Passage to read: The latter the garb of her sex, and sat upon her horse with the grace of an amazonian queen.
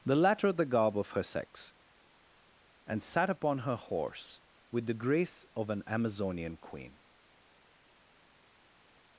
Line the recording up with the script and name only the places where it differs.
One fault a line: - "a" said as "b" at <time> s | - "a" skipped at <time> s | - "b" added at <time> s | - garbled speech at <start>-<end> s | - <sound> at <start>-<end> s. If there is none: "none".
none